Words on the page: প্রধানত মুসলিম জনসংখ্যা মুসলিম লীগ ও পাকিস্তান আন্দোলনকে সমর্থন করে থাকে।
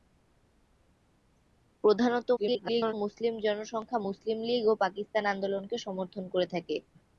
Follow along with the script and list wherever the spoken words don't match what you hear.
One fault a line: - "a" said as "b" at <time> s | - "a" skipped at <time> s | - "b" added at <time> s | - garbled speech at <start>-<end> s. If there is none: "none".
- garbled speech at 2.4-2.9 s